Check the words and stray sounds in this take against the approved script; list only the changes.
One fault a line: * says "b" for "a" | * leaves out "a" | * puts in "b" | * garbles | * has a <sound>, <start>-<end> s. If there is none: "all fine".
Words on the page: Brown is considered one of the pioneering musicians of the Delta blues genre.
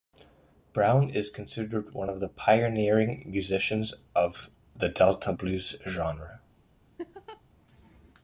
* has a laugh, 7.0-7.4 s